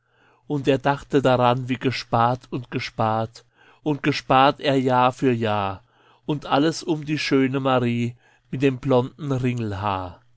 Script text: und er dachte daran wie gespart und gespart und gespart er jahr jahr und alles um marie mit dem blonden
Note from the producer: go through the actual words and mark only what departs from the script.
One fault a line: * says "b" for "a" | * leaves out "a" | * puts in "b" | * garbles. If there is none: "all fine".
* puts in "für"
* puts in "die schöne"